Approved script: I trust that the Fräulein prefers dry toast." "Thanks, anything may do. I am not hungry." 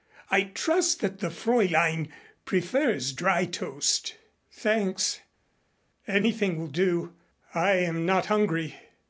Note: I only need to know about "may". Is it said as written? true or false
false